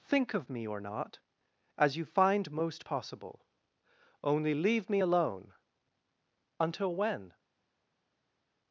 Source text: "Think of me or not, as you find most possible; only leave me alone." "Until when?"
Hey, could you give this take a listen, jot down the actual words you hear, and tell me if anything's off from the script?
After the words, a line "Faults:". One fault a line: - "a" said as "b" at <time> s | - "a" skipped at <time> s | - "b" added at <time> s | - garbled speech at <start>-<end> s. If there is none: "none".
"Think of me or not, as you find most possible; only leave me alone." "Until when?"
Faults:
none